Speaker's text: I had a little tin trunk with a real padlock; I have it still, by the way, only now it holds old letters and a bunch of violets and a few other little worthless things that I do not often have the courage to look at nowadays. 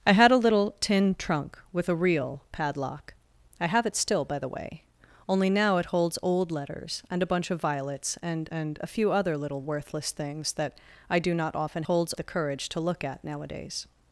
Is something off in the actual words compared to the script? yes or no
yes